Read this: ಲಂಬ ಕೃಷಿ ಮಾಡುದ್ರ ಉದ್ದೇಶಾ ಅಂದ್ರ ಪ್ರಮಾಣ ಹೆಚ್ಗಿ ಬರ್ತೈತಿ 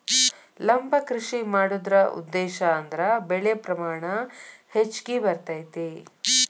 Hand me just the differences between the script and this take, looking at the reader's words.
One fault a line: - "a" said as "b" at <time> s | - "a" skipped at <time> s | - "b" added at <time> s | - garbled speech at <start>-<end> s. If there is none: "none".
- "ಬೆಳೆ" added at 3.3 s